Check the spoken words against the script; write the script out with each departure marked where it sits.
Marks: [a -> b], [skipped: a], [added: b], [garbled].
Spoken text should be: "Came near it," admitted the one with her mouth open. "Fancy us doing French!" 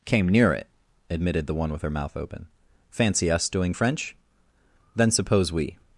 "Came near it," admitted the one with her mouth open. "Fancy us doing French!" [added: Then suppose we]